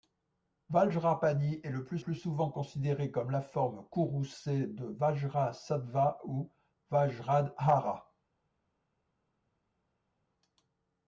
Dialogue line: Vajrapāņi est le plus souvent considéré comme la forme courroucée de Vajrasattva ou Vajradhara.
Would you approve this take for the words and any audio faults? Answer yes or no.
no